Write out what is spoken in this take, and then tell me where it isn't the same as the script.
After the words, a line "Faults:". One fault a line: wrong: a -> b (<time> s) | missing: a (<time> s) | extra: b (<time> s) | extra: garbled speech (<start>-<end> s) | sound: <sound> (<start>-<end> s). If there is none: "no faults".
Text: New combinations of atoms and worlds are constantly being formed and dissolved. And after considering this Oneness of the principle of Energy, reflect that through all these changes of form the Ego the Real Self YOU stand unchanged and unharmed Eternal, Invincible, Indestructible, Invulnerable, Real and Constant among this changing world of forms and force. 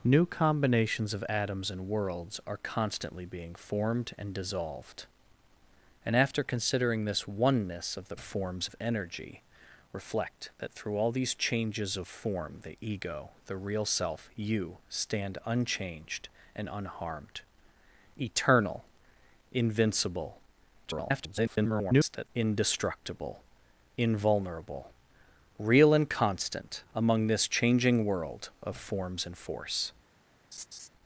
New combinations of atoms and worlds are constantly being formed and dissolved. And after considering this Oneness of the forms of Energy, reflect that through all these changes of form the Ego the Real Self YOU stand unchanged and unharmed Eternal, Invincible, [garbled] Indestructible, Invulnerable, Real and Constant among this changing world of forms and force.
Faults:
wrong: principle -> forms (8.2 s)
extra: garbled speech (20.8-22.3 s)
sound: laugh (30.5-30.9 s)